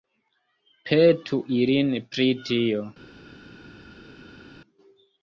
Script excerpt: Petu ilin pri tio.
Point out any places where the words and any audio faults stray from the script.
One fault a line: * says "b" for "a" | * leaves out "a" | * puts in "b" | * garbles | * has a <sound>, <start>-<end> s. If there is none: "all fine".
all fine